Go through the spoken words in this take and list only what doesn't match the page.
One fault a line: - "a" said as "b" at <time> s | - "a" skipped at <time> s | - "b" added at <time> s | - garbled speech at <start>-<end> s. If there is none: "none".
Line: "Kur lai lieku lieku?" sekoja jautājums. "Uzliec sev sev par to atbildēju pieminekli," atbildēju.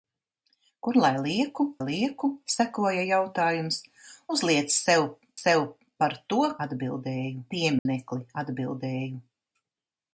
none